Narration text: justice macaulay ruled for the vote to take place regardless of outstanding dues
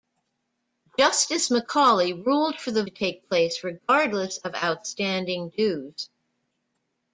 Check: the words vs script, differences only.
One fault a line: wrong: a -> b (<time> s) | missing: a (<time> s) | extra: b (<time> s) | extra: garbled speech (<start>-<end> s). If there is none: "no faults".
missing: vote (2.8 s)